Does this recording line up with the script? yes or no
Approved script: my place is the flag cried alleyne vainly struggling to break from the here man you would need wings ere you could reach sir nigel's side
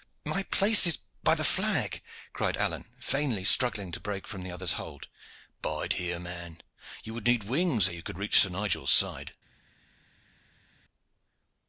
no